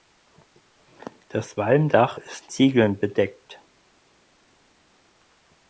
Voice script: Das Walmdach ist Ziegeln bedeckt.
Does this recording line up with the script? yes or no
yes